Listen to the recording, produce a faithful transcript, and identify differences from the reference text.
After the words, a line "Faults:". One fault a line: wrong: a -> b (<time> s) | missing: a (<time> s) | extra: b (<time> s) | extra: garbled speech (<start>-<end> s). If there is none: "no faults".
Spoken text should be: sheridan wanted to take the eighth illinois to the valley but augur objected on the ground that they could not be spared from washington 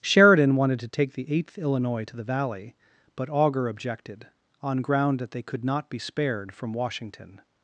sheridan wanted to take the eighth illinois to the valley but augur objected on ground that they could not be spared from washington
Faults:
missing: the (4.8 s)